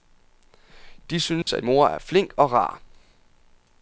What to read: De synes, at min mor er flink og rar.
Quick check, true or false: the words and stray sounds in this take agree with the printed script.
false